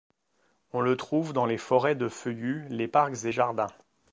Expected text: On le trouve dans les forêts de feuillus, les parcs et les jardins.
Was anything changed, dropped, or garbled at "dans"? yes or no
no